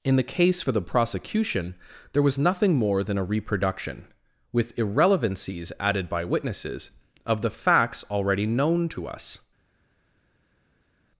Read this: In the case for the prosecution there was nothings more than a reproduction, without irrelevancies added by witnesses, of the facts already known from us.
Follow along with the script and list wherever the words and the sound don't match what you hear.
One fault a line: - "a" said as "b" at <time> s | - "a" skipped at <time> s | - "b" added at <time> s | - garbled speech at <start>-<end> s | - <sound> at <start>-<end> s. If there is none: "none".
- "nothings" said as "nothing" at 2.4 s
- "without" said as "with" at 4.5 s
- "from" said as "to" at 8.9 s